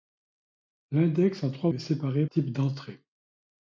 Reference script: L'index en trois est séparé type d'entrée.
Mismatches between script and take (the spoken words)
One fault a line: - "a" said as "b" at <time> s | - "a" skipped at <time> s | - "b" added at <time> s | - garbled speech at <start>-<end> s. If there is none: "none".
none